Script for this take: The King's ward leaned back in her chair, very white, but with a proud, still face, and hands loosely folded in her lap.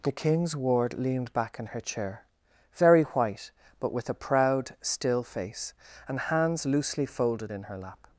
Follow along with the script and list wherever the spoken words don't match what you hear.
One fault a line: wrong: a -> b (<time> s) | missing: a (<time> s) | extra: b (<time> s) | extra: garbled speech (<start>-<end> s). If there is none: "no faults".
no faults